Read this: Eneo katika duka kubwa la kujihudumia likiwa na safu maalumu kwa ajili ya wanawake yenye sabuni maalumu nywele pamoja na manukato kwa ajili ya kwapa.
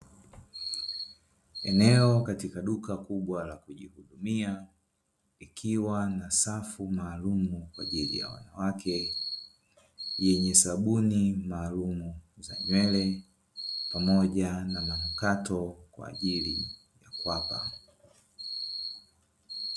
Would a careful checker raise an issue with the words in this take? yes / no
yes